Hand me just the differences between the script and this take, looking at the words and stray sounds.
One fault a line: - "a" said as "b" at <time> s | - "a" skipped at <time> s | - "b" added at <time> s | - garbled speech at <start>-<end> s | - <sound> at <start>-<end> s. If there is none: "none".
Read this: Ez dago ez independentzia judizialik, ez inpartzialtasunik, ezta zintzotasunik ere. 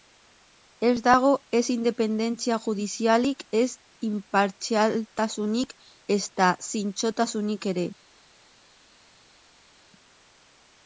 none